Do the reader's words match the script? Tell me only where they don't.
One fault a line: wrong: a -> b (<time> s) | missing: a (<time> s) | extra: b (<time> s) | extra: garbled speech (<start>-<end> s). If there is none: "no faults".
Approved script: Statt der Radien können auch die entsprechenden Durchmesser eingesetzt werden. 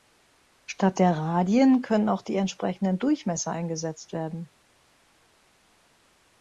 no faults